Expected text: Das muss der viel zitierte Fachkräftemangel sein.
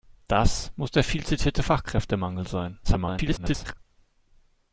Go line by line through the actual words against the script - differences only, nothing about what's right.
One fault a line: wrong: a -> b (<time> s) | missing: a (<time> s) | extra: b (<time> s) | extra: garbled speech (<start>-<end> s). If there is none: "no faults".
extra: garbled speech (2.8-3.8 s)